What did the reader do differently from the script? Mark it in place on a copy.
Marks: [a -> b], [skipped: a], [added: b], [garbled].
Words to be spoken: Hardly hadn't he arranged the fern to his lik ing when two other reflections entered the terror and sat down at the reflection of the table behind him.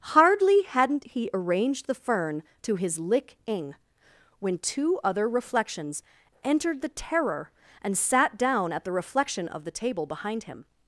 Hardly hadn't he arranged the fern to his lik ing when two other reflections entered the terror and sat down at the reflection of the table behind him.